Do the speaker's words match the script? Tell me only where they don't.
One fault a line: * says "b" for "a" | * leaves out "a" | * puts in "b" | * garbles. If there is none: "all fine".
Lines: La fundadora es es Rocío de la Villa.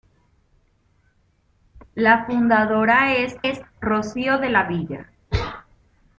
all fine